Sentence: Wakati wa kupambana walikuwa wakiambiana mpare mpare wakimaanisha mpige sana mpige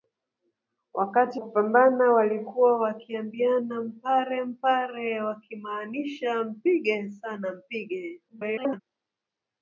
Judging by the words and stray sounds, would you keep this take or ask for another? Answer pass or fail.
fail